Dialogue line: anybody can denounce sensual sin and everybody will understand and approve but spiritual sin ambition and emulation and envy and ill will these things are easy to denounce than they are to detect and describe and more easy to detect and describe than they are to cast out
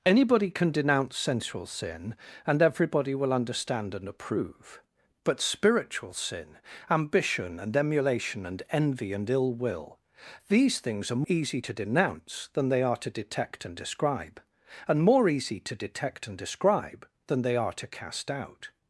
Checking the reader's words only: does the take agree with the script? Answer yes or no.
yes